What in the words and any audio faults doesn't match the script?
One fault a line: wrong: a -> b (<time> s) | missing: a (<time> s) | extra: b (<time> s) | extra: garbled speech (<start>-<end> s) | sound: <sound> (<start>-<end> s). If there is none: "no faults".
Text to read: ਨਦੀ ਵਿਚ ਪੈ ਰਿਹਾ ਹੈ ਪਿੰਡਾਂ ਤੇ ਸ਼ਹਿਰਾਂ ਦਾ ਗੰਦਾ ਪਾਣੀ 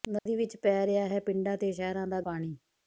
sound: dropout (0.2-0.3 s)
missing: ਗੰਦਾ (2.2 s)